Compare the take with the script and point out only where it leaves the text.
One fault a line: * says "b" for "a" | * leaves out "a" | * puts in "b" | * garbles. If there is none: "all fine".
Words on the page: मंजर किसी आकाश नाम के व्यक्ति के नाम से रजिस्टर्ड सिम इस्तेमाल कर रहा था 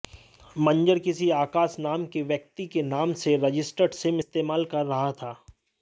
all fine